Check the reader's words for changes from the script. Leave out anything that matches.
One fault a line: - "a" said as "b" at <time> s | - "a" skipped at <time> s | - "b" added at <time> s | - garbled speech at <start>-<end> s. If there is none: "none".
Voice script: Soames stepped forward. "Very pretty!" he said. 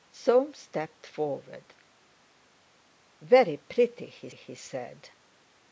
- "he" added at 4.3 s